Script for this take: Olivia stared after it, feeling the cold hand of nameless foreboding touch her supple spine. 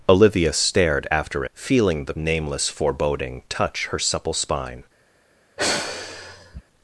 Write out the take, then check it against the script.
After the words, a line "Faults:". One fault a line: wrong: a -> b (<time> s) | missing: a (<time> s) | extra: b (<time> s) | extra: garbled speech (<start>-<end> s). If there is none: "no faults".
Olivia stared after feeling the nameless foreboding touch her supple spine.
Faults:
missing: it (1.4 s)
missing: cold hand of (2.2 s)